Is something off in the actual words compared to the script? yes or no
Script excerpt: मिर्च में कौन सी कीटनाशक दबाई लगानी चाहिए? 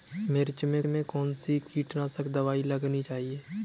yes